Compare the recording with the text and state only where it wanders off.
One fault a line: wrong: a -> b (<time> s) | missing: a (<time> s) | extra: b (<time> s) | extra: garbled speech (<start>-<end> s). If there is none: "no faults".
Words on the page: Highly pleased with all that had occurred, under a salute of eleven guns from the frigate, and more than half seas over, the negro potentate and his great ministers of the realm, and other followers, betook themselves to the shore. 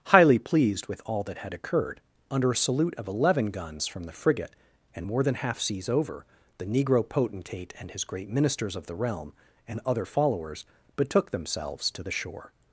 no faults